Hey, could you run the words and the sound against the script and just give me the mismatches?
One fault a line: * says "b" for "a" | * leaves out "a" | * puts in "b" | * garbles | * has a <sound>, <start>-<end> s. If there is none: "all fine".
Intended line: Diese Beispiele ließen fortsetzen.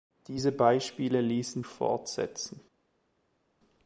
all fine